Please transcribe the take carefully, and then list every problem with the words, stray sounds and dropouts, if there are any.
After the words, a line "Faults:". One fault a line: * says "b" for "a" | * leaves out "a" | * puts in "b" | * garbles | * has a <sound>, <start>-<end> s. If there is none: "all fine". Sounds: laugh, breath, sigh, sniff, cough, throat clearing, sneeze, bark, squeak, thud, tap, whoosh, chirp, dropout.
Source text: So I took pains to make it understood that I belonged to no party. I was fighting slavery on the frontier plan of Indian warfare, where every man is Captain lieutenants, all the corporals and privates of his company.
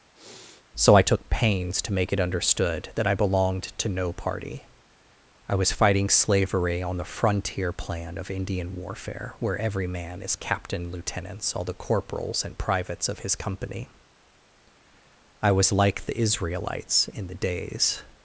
So I took pains to make it understood that I belonged to no party. I was fighting slavery on the frontier plan of Indian warfare, where every man is Captain lieutenants, all the corporals and privates of his company. I was like the Israelites in the days
Faults:
* has a sniff, 0.1-0.7 s
* puts in "I was like the Israelites in the days"